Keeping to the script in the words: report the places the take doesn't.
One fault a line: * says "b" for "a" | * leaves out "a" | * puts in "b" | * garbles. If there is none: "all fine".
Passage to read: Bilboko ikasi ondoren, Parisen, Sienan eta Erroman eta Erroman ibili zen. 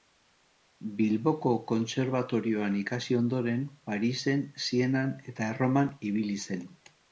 * puts in "kontserbatorioan"
* leaves out "eta Erroman"